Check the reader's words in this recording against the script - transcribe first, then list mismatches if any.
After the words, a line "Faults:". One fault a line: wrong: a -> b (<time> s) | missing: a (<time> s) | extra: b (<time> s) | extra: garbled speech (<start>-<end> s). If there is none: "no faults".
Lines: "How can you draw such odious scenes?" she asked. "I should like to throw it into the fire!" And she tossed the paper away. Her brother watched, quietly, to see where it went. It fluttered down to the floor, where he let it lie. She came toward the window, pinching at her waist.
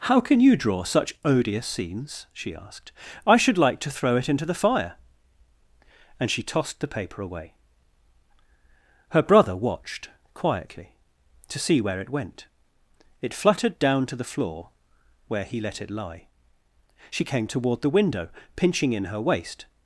"How can you draw such odious scenes?" she asked. "I should like to throw it into the fire!" And she tossed the paper away. Her brother watched, quietly, to see where it went. It fluttered down to the floor, where he let it lie. She came toward the window, pinching in her waist.
Faults:
wrong: at -> in (18.9 s)